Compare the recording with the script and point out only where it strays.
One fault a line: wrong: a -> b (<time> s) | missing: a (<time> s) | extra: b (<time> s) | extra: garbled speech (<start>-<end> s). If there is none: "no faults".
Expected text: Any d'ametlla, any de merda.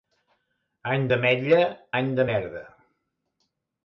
no faults